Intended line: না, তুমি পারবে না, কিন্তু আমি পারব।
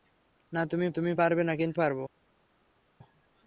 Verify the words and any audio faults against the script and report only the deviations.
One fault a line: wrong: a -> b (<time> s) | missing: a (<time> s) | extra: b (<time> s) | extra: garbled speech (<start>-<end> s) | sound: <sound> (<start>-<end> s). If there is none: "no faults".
extra: তুমি (0.9 s)
missing: আমি (1.8 s)